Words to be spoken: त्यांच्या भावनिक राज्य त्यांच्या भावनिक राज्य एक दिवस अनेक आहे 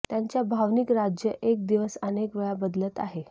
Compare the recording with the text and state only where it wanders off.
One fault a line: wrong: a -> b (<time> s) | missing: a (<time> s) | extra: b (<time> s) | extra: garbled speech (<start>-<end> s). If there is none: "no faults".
missing: त्यांच्या भावनिक राज्य (1.3 s)
extra: वेळा बदलत (2.4 s)